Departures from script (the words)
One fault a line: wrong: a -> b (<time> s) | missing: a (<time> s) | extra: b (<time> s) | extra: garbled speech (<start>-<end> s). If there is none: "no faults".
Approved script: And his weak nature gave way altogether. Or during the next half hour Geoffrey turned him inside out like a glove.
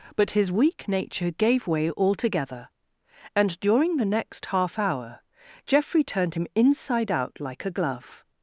wrong: And -> But (0.1 s)
wrong: Or -> And (3.4 s)